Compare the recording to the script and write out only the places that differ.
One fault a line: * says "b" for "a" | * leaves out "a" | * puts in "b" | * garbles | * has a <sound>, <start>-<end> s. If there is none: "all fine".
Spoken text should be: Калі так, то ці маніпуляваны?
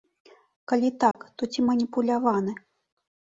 * has a dropout, 1.1-1.1 s